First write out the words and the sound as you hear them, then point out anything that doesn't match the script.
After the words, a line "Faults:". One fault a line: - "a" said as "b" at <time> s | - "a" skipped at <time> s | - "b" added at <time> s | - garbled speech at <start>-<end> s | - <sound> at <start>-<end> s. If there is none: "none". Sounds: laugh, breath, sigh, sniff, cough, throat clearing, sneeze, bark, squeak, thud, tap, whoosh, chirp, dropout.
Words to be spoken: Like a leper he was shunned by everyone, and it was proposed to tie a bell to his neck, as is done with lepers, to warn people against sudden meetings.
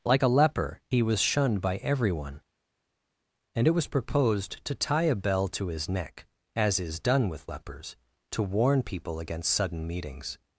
Like a leper he was shunned by everyone, and it was proposed to tie a bell to his neck, as is done with lepers, to warn people against sudden meetings.
Faults:
none